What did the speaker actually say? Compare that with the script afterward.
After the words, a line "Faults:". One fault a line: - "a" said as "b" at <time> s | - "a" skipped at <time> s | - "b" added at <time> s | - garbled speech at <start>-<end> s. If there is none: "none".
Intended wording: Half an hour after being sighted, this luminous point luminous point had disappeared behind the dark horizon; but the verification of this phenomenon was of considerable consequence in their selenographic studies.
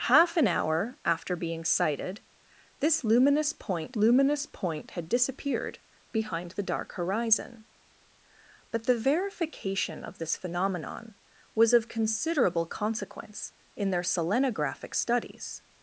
Half an hour after being sighted, this luminous point luminous point had disappeared behind the dark horizon; but the verification of this phenomenon was of considerable consequence in their selenographic studies.
Faults:
none